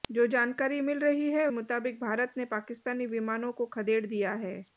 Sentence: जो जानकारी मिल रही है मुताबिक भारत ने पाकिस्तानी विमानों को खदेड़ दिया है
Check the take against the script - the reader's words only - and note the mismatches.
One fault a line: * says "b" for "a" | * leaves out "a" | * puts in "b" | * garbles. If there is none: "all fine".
all fine